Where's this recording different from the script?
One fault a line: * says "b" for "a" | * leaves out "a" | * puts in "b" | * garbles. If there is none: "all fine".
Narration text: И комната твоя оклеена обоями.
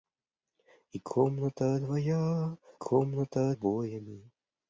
* says "комната" for "оклеена"